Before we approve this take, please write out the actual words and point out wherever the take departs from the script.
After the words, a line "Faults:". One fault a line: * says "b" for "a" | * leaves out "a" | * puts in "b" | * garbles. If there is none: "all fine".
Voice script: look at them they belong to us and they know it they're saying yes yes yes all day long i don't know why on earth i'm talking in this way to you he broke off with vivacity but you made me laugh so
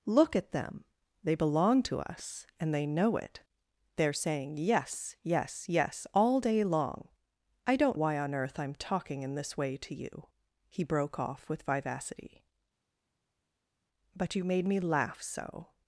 look at them they belong to us and they know it they're saying yes yes yes all day long i don't why on earth i'm talking in this way to you he broke off with vivacity but you made me laugh so
Faults:
* leaves out "know"